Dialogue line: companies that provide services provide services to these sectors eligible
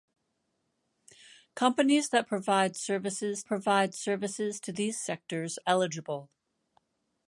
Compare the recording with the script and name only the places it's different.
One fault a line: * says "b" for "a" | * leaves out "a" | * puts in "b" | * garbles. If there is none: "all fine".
all fine